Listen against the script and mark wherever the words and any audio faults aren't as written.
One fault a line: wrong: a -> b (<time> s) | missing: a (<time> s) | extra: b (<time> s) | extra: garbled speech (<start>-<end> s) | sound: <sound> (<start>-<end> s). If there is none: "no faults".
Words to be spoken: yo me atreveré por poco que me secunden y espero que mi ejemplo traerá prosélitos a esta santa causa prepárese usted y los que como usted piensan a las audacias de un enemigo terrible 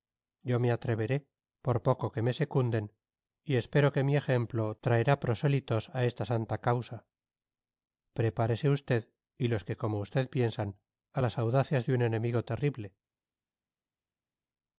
no faults